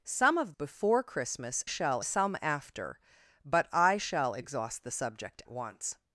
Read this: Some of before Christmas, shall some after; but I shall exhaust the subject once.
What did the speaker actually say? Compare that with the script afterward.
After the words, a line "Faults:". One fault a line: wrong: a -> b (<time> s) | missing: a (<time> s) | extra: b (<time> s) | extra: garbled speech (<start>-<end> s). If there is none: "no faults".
Some of before Christmas, shall some after; but I shall exhaust the subject once.
Faults:
no faults